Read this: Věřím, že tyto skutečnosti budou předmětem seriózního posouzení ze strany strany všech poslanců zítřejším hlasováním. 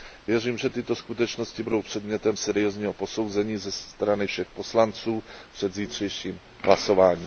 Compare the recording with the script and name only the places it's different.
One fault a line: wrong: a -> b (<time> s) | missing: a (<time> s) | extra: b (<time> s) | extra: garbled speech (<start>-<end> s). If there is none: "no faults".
missing: strany (4.3 s)
extra: před (5.5 s)